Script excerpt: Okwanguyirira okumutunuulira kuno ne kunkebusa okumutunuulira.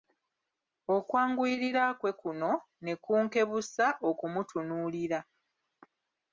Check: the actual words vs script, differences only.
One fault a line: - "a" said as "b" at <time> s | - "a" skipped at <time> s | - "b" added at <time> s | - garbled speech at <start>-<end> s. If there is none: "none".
- "okumutunuulira" said as "kwe" at 2.0 s